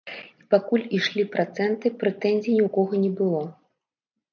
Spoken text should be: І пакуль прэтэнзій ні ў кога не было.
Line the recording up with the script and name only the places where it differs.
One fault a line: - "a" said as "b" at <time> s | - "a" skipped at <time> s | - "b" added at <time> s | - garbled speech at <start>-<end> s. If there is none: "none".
- "ішлі працэнты" added at 1.0 s